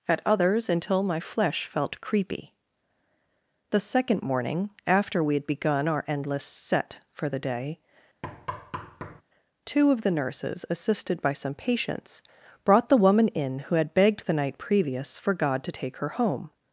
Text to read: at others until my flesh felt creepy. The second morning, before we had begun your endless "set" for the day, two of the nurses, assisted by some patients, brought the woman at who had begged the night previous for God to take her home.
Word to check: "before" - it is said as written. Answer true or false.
false